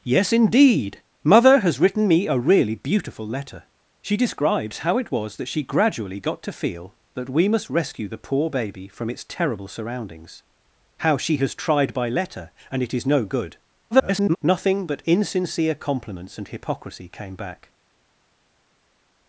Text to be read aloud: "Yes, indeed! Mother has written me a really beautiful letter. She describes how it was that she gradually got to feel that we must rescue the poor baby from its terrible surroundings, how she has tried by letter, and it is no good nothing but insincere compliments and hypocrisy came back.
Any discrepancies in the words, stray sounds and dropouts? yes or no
yes